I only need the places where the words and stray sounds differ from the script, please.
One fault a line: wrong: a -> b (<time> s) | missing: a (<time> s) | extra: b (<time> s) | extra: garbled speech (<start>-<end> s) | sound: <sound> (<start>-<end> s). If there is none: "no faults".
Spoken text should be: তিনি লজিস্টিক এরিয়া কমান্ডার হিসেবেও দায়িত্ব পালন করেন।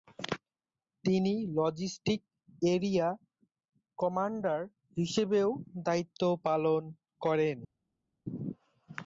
no faults